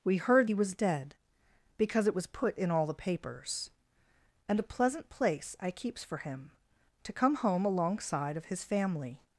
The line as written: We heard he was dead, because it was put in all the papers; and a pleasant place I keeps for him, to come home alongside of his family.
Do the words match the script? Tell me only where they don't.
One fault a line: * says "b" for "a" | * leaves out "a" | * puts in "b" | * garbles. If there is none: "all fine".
all fine